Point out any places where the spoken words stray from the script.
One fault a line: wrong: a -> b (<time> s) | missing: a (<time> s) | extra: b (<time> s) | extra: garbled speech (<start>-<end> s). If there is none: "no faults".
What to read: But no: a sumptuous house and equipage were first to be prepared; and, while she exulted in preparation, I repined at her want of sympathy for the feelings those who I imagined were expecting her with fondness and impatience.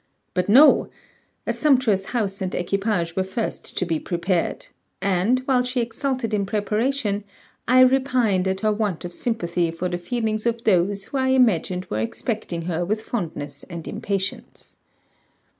extra: of (10.4 s)